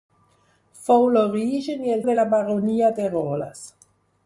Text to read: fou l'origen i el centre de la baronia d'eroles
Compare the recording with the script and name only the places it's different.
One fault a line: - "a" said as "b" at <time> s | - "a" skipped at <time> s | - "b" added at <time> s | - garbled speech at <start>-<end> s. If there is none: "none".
- "centre" skipped at 2.0 s